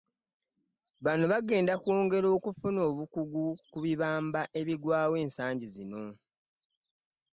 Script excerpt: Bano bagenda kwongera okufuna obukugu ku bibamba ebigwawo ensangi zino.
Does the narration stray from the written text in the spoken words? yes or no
no